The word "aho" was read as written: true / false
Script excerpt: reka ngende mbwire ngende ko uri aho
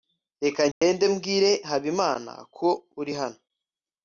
false